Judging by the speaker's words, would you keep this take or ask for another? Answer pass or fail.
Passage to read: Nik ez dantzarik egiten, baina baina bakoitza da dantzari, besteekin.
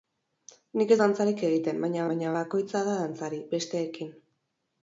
pass